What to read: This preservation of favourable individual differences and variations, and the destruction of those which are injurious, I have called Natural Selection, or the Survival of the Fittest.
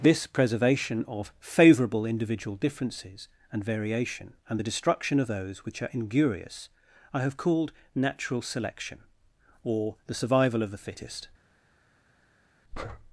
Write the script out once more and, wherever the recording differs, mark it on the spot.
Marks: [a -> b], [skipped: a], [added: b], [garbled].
This preservation of favourable individual differences and [variations, -> variation] and the destruction of those which are injurious, I have called Natural Selection, or the Survival of the Fittest.